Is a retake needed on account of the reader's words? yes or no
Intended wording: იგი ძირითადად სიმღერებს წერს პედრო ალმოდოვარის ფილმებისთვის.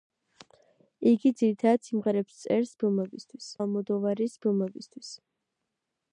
yes